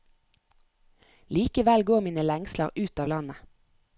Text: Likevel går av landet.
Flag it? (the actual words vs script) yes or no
yes